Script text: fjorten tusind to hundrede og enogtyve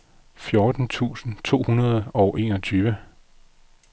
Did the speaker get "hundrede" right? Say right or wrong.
right